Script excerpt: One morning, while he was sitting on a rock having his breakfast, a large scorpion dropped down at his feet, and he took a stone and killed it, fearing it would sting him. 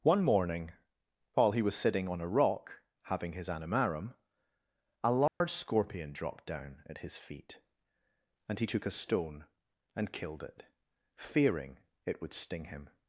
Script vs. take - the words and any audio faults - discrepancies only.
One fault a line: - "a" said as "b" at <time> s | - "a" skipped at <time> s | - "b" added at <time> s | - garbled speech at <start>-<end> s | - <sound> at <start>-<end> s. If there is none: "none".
- "breakfast" said as "animarum" at 3.5 s
- dropout at 5.3-5.4 s